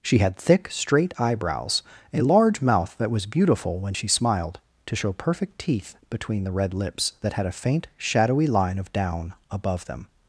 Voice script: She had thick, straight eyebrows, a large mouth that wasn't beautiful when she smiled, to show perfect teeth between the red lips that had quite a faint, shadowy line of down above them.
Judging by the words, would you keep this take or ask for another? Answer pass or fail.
fail